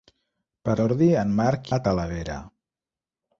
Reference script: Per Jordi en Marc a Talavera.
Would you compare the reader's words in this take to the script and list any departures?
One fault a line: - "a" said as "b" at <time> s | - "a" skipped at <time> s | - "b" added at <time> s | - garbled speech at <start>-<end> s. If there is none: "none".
none